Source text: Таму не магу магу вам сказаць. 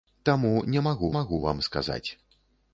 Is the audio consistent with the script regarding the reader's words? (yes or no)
yes